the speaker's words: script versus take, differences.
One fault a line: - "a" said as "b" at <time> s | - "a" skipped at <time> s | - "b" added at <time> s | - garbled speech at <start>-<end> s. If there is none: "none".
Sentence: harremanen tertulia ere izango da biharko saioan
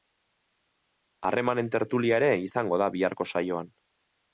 none